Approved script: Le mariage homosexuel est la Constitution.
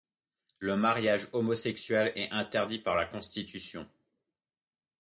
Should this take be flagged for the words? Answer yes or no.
yes